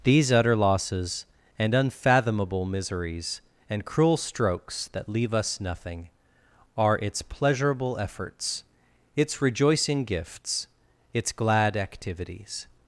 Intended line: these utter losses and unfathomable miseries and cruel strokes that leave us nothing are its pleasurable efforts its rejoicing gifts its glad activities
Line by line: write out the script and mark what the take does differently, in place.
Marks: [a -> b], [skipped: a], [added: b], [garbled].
these utter losses and unfathomable miseries and cruel strokes that leave us nothing are its pleasurable efforts its rejoicing gifts its glad activities